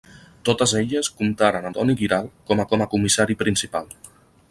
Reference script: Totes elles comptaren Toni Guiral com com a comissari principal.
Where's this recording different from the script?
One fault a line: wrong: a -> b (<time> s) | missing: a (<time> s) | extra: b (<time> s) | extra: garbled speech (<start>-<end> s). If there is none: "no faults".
no faults